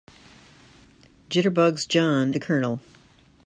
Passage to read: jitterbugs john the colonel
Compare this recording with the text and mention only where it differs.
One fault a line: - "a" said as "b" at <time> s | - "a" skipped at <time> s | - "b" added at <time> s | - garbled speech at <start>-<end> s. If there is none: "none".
none